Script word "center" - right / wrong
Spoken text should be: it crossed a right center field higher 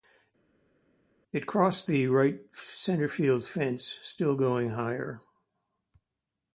right